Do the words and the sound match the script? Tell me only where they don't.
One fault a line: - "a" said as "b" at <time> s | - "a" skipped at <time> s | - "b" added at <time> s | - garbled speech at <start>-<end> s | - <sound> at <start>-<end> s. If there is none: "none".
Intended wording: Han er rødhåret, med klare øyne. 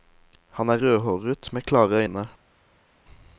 none